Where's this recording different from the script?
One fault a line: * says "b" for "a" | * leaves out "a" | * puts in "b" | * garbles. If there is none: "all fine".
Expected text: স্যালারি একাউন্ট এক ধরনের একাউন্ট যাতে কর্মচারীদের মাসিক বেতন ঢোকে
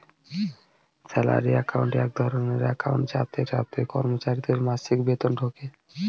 * puts in "যাতে"